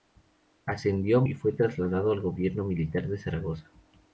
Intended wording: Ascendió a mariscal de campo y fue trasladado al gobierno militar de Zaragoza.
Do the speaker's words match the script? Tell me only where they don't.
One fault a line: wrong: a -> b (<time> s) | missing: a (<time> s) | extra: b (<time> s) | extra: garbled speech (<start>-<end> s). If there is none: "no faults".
missing: mariscal de campo (1.2 s)